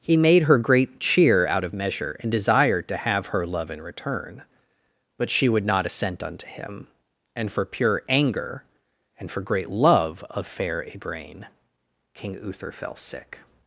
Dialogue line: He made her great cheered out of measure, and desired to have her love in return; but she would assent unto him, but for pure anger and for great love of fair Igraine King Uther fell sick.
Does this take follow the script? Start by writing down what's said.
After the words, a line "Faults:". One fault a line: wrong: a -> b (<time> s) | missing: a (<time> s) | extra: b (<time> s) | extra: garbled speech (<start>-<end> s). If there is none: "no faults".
He made her great cheer out of measure, and desired to have her love in return; but she would not assent unto him, and for pure anger and for great love of fair Igraine King Uther fell sick.
Faults:
wrong: cheered -> cheer (1.0 s)
extra: not (5.7 s)
wrong: but -> and (7.3 s)